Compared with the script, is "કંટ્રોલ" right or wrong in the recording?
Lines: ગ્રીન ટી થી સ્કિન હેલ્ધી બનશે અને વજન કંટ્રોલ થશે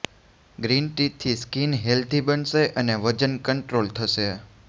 right